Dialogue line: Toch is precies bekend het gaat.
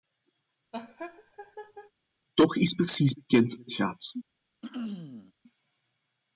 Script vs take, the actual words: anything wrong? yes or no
no